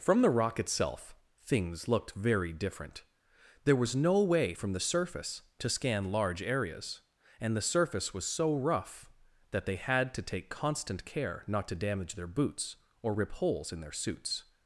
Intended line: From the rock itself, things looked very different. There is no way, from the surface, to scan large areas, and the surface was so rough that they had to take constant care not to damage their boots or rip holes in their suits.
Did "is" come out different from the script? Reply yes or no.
yes